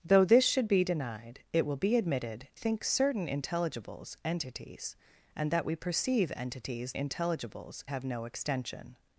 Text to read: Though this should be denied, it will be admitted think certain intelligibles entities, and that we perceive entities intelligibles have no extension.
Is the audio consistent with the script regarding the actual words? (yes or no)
yes